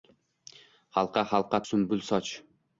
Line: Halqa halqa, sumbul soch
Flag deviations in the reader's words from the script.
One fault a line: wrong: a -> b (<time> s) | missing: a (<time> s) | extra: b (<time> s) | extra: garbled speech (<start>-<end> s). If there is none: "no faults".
no faults